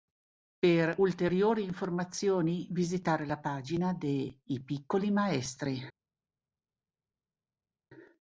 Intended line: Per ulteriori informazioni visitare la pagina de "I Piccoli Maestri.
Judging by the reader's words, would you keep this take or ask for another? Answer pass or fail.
pass